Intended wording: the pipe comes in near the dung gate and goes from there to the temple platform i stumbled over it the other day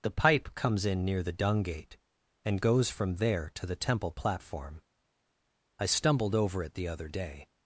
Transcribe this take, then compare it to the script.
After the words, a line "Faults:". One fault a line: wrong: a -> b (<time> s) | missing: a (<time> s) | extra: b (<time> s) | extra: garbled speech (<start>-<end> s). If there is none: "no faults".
the pipe comes in near the dung gate and goes from there to the temple platform i stumbled over it the other day
Faults:
no faults